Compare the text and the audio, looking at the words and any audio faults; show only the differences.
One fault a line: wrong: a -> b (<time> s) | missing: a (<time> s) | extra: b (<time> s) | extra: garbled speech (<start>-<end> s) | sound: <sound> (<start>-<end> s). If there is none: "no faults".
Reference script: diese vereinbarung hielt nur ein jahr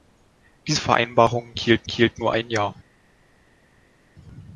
extra: hielt (1.9 s)